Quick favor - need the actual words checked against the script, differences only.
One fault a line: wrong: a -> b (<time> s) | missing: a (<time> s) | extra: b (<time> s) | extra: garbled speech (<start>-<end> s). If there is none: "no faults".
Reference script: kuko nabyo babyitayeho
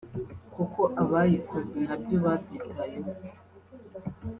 extra: abayikoze (1.0 s)